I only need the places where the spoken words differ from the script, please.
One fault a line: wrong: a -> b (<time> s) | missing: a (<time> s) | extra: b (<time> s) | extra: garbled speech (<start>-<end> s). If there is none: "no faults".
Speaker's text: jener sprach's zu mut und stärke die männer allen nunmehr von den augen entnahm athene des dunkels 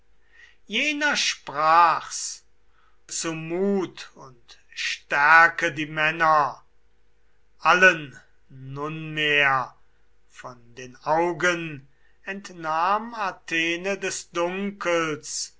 no faults